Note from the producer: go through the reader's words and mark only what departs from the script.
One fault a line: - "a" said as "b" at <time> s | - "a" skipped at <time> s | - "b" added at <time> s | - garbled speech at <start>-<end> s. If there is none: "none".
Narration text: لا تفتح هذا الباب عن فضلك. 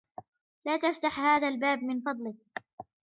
- "عن" said as "من" at 1.8 s